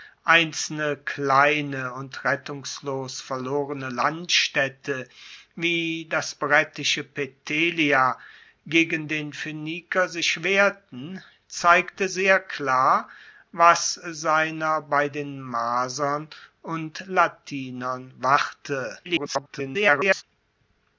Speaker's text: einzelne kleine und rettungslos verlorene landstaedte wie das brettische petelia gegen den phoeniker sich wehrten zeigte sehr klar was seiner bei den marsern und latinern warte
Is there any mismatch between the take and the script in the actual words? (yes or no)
yes